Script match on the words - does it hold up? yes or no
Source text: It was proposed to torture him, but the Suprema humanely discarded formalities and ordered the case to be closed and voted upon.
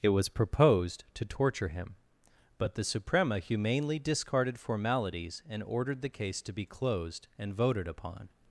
yes